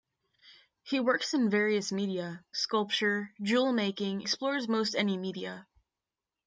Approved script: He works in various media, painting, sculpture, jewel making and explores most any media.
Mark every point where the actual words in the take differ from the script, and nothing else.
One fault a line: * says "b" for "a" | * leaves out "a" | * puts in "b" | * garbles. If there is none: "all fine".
* leaves out "painting"
* leaves out "and"